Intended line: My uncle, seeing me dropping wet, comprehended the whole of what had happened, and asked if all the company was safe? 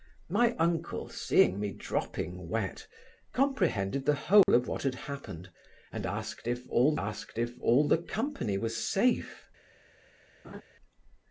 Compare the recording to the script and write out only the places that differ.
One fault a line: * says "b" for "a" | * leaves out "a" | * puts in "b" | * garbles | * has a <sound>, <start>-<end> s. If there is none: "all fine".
* has a dropout, 4.4-4.5 s
* puts in "asked if all"
* has a laugh, 10.4-10.6 s